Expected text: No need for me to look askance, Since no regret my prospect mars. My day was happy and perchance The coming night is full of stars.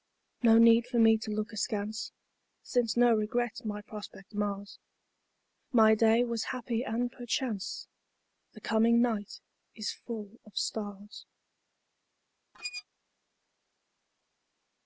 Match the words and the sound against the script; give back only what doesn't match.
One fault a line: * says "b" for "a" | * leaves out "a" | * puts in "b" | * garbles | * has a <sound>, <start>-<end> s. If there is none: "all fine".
* has a squeak, 12.5-12.8 s